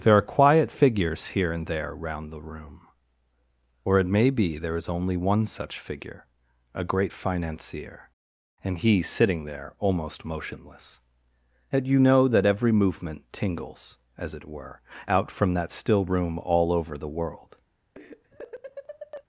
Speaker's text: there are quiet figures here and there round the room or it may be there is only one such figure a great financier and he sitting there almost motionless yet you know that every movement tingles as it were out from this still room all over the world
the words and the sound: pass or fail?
fail